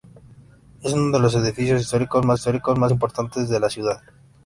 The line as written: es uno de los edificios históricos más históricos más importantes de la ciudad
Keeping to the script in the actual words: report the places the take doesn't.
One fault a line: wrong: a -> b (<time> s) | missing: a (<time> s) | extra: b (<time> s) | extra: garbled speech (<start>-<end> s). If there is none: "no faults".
no faults